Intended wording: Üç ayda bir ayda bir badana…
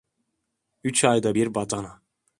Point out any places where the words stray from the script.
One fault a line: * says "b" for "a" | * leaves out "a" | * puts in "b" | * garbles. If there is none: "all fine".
* leaves out "ayda bir"